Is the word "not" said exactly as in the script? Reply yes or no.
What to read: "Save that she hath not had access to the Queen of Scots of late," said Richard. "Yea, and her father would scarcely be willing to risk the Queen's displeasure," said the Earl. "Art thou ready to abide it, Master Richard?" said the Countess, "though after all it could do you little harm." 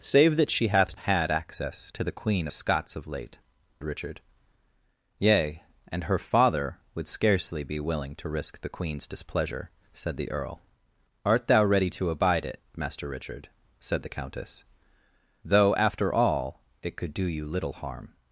no